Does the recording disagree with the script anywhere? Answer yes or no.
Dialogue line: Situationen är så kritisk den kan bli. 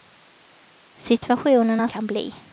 yes